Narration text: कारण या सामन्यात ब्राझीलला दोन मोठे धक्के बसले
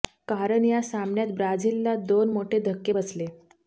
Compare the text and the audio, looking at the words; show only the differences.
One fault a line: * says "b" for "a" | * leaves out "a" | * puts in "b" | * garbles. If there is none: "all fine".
all fine